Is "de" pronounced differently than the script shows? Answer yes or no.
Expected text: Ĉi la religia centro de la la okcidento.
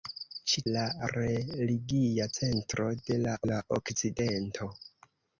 no